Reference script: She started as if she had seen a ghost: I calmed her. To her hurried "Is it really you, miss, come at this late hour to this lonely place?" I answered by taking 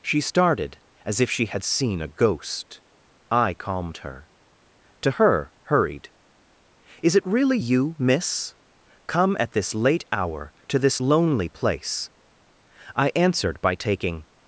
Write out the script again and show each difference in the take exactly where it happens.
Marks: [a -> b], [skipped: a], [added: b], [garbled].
She started as if she had seen a ghost: I calmed her. To her hurried "Is it really you, miss, come at this late hour to this lonely place?" I answered by taking